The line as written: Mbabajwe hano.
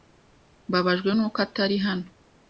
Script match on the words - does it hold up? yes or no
no